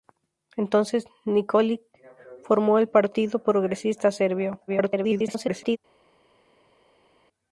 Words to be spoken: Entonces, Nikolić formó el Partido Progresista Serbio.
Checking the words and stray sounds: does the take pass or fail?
fail